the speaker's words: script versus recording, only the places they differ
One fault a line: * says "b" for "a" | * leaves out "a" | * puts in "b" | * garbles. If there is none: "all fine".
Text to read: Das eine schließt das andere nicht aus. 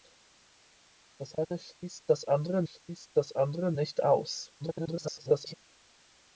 * puts in "schließt das andere"
* garbles